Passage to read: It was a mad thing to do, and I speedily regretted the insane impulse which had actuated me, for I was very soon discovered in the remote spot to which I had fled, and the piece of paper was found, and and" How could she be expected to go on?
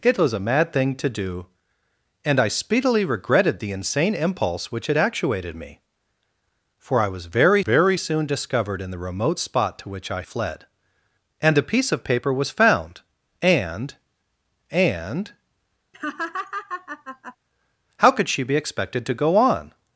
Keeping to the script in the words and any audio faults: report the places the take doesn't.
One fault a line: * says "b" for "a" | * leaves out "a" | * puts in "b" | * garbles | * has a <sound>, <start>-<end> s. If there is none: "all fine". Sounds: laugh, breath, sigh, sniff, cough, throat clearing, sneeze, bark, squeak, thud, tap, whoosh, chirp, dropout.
* puts in "very"
* leaves out "had"
* has a laugh, 15.9-17.4 s